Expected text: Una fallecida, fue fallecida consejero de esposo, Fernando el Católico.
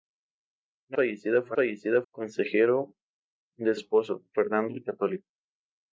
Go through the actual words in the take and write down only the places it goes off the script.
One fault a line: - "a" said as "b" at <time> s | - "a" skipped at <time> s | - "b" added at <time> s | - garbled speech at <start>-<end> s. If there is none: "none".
none